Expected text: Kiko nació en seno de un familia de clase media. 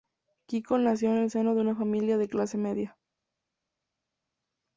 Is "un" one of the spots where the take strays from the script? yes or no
yes